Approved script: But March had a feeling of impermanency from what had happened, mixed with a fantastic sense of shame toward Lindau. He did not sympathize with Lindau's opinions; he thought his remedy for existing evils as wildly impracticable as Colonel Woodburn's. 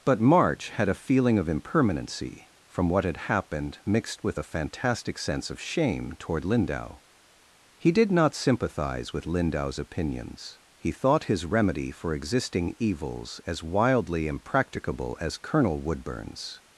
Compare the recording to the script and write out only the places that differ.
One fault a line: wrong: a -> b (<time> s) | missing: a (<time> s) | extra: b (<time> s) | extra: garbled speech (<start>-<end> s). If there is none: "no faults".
no faults